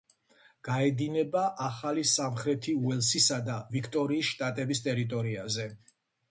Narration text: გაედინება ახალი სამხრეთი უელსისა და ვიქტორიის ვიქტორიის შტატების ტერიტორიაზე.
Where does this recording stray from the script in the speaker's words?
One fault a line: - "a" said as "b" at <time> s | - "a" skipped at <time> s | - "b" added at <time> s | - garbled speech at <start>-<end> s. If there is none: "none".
- "ვიქტორიის" skipped at 4.3 s